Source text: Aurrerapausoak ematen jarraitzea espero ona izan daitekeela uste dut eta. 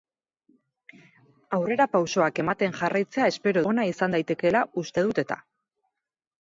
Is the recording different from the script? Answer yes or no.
no